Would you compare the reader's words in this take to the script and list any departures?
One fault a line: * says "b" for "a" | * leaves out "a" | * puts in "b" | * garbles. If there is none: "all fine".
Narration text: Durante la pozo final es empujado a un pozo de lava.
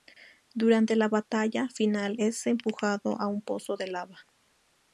* says "batalla" for "pozo"